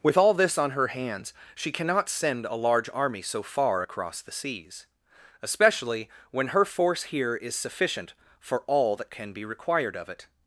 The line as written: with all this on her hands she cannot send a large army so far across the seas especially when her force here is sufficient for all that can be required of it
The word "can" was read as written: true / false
true